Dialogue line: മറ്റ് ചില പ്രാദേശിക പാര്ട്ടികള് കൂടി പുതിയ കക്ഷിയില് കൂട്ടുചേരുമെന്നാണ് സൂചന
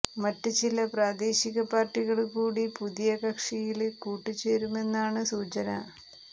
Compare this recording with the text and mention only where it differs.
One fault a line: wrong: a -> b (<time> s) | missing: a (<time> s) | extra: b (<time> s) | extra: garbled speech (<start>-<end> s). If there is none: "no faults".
no faults